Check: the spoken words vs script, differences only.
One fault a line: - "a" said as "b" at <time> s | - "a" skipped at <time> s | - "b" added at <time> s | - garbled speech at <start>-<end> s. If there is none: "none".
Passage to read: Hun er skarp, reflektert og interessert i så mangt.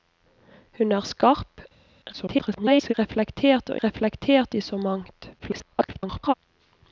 - garbled speech at 2.1-2.9 s
- "interessert" said as "reflektert" at 3.8 s
- garbled speech at 5.4-6.3 s